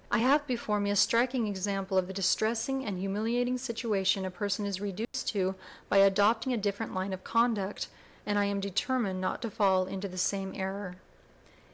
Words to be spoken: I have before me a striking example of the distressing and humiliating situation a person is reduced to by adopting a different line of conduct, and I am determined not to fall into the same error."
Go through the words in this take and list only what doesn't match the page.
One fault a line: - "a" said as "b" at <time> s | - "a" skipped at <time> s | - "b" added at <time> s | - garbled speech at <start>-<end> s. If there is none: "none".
none